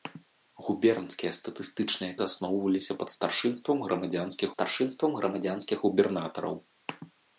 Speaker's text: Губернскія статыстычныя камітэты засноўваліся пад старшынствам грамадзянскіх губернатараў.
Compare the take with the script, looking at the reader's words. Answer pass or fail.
fail